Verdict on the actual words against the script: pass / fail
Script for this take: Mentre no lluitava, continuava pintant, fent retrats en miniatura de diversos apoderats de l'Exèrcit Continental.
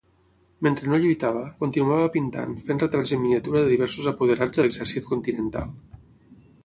pass